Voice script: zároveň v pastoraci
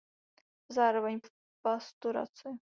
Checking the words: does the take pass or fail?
pass